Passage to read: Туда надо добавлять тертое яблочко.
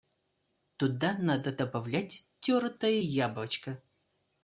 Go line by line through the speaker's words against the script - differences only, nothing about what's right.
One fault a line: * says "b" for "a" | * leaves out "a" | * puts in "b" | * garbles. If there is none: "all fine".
all fine